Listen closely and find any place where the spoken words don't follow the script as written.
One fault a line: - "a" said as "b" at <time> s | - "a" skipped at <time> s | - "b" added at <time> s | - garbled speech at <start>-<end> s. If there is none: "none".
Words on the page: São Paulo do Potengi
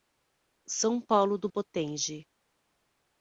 none